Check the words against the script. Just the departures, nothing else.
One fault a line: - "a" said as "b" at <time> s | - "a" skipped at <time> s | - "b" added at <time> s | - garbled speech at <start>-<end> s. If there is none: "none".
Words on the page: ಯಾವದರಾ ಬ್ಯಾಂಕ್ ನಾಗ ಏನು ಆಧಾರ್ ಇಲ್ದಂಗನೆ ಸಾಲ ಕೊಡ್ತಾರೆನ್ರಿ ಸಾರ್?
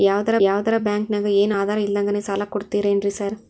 - "ಯಾವದರಾ" added at 0.4 s